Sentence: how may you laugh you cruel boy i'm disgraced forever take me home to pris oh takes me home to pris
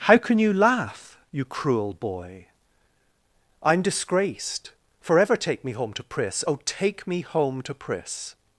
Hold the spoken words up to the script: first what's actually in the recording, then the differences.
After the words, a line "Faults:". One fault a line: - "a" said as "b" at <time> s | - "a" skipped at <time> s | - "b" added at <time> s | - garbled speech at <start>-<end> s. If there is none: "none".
how can you laugh you cruel boy i'm disgraced forever take me home to pris oh take me home to pris
Faults:
- "may" said as "can" at 0.2 s
- "takes" said as "take" at 6.7 s